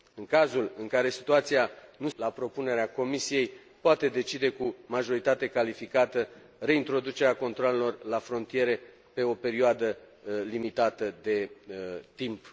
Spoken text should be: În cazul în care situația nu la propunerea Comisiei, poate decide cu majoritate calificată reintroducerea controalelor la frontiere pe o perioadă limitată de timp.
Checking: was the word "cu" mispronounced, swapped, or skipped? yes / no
no